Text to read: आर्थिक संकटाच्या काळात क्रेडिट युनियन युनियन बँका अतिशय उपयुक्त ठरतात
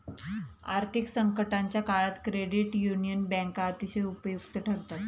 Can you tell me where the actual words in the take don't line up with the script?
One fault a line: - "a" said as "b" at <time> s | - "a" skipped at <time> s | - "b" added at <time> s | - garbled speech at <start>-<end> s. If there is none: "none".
- "युनियन" skipped at 3.2 s